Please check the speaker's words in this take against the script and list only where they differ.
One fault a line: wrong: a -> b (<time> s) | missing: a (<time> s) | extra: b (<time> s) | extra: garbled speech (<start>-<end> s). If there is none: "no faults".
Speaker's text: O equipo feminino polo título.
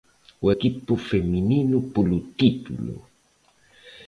no faults